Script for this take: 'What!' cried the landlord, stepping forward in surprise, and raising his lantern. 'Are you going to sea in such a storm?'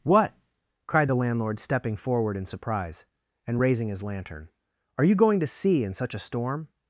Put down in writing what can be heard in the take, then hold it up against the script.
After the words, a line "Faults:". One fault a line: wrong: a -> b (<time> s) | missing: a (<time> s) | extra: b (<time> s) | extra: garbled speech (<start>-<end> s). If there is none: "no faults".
'What!' cried the landlord, stepping forward in surprise, and raising his lantern. 'Are you going to sea in such a storm?'
Faults:
no faults